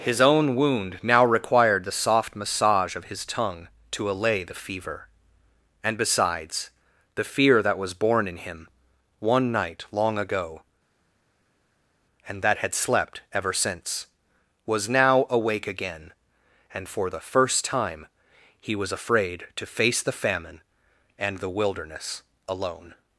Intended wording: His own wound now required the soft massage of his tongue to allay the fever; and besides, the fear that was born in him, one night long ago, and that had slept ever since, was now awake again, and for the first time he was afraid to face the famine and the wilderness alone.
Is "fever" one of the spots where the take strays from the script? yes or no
no